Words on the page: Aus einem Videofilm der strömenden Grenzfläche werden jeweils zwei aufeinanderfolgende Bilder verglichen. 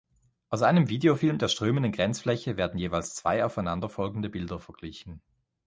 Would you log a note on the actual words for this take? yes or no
no